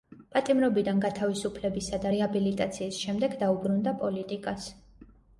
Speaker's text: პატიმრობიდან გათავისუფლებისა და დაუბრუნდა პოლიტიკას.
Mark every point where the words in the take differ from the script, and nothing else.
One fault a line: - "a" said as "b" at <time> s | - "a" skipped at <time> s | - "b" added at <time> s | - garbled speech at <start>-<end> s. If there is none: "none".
- "რეაბილიტაციის შემდეგ" added at 2.1 s